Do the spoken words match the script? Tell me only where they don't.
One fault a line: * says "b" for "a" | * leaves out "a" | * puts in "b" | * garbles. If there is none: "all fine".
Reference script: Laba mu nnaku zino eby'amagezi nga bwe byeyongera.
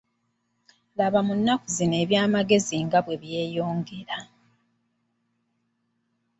all fine